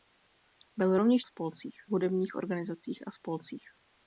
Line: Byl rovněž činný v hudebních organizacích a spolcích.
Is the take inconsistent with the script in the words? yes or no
yes